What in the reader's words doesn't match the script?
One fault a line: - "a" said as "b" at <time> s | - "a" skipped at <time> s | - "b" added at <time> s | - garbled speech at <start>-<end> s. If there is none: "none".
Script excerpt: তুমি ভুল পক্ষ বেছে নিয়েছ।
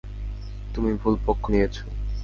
- "বেছে" skipped at 1.4 s